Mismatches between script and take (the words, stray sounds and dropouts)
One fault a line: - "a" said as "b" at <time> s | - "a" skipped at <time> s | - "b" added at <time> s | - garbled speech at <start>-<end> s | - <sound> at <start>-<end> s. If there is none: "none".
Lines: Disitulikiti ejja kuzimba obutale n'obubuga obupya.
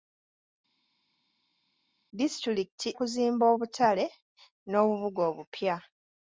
- "ejja" skipped at 2.9 s